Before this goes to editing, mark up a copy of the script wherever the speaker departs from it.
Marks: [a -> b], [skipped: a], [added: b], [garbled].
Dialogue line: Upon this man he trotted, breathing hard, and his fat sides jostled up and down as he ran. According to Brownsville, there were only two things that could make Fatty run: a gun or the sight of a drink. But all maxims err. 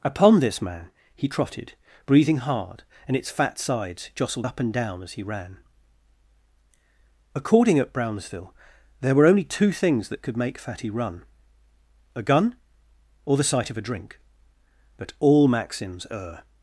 Upon this man he trotted, breathing hard, and [his -> its] fat sides jostled up and down as he ran. According [to -> at] Brownsville, there were only two things that could make Fatty run: a gun or the sight of a drink. But all maxims err.